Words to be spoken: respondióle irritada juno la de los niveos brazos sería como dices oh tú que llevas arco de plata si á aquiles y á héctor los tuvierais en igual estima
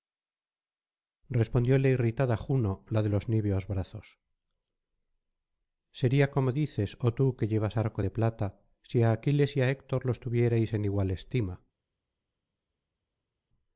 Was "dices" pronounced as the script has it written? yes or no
yes